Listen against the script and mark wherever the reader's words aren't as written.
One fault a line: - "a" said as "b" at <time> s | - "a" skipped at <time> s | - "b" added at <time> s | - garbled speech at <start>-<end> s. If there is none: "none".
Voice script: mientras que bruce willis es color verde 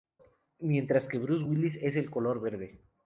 - "el" added at 2.0 s